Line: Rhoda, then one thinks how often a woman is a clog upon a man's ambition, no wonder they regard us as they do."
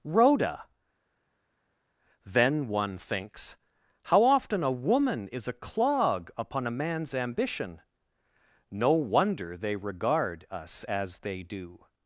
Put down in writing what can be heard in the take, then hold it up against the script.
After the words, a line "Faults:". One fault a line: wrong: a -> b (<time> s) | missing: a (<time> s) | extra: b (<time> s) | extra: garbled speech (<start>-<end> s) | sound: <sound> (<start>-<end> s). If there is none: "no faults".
Rhoda, then one thinks how often a woman is a clog upon a man's ambition, no wonder they regard us as they do."
Faults:
no faults